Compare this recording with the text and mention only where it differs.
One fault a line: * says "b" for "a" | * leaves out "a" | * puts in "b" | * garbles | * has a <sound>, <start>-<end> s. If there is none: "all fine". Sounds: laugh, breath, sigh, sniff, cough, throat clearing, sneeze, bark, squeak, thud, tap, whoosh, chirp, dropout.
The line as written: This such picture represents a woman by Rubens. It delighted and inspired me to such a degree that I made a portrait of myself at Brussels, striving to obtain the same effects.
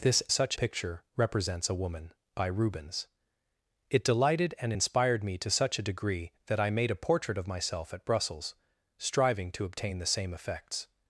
all fine